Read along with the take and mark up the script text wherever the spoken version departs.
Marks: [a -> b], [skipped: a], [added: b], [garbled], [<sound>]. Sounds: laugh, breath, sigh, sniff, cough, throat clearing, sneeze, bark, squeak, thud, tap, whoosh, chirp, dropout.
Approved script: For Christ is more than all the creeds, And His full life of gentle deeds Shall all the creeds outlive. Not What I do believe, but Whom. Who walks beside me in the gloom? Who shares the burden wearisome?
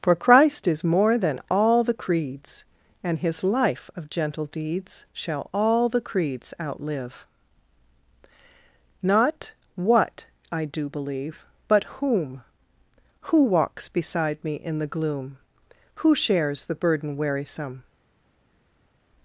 For Christ is more than all the creeds, And His [skipped: full] life of gentle deeds Shall all the creeds outlive. Not What I do believe, but Whom. Who walks beside me in the gloom? Who shares the burden wearisome?